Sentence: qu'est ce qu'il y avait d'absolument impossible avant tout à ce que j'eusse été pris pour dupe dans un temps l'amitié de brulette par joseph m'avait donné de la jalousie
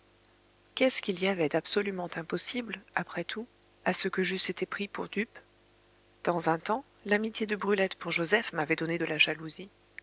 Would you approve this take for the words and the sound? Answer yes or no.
no